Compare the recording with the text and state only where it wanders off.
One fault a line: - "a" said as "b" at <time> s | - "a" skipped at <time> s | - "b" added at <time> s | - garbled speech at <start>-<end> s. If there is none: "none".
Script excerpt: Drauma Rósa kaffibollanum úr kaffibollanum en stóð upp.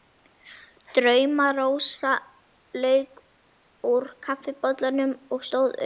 - "kaffibollanum" said as "lauk" at 2.9 s
- "en" said as "og" at 5.4 s